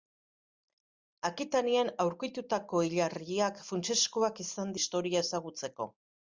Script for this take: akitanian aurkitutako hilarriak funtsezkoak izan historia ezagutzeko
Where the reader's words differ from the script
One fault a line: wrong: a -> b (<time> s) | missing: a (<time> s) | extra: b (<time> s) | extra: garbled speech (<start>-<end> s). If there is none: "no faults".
no faults